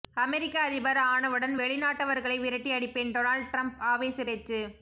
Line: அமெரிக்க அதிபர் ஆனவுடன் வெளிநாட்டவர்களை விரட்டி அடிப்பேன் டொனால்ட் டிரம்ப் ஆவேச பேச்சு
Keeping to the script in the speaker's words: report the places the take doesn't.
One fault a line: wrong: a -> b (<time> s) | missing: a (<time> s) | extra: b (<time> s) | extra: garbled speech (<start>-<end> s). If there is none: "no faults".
no faults